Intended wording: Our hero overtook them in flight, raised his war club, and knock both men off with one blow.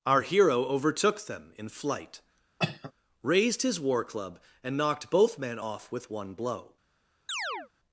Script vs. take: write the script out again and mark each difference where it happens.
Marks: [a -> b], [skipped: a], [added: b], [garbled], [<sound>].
Our hero overtook them in flight, [cough] raised his war club, and [knock -> knocked] both men off with one blow. [chirp]